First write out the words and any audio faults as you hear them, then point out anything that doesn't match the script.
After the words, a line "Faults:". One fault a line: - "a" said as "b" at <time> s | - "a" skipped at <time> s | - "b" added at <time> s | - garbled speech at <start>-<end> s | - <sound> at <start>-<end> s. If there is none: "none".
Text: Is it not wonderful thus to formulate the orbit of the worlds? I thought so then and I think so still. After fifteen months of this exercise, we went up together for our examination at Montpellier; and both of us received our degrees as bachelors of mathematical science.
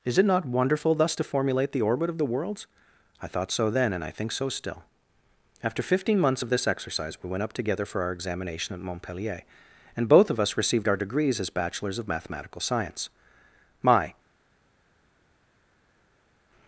Is it not wonderful thus to formulate the orbit of the worlds? I thought so then and I think so still. After fifteen months of this exercise, we went up together for our examination at Montpellier; and both of us received our degrees as bachelors of mathematical science. My
Faults:
- "My" added at 13.8 s